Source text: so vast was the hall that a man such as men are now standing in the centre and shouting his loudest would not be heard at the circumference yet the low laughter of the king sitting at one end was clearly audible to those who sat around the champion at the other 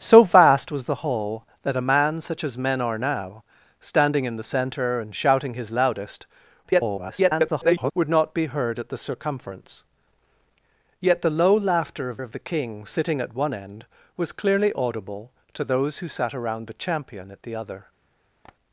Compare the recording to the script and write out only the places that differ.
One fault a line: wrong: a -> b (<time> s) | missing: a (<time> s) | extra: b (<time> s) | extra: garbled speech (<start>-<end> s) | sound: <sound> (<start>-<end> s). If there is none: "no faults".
extra: garbled speech (6.6-7.9 s)
extra: of (12.2 s)
sound: tap (18.4-18.6 s)